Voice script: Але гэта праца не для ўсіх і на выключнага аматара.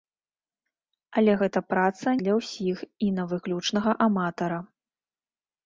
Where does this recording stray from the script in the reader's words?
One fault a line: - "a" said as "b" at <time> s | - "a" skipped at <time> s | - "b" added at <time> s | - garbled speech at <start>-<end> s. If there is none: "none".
- "не" skipped at 2.1 s